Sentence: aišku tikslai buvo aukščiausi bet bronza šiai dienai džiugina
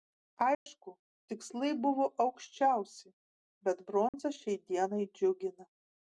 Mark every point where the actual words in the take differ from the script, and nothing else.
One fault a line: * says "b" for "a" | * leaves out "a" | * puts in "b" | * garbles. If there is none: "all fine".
all fine